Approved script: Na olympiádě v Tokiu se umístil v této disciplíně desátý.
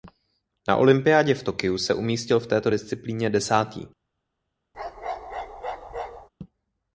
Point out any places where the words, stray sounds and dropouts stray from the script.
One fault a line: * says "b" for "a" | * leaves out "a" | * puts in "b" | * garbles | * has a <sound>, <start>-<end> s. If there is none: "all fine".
* has a bark, 4.7-6.3 s